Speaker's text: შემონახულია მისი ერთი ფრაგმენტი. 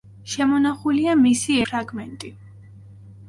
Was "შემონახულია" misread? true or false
false